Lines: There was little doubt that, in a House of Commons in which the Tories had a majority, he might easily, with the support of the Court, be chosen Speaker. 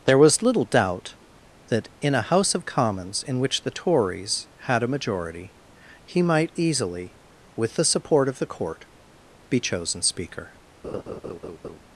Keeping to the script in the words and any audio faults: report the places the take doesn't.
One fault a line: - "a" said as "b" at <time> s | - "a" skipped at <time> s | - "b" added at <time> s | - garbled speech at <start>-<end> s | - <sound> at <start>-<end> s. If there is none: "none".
- laugh at 10.8-11.8 s